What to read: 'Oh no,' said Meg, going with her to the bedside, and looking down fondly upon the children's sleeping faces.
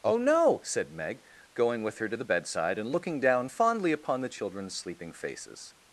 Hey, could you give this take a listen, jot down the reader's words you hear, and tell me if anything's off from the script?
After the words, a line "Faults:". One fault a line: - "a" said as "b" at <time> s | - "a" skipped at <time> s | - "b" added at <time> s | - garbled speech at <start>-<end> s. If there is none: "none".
'Oh no,' said Meg, going with her to the bedside, and looking down fondly upon the children's sleeping faces.
Faults:
none